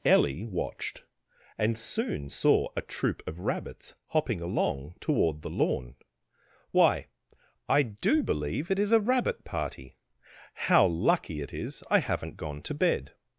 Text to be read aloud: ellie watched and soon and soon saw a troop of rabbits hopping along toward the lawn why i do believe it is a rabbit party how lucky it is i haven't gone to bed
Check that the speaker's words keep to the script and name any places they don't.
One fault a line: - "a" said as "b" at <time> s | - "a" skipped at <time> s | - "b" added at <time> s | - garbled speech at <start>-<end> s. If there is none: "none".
- "and soon" skipped at 2.3 s